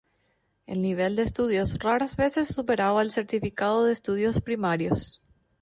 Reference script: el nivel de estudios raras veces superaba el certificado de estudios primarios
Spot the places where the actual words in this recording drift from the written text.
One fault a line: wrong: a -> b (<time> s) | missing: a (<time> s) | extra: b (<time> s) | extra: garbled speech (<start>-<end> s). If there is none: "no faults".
no faults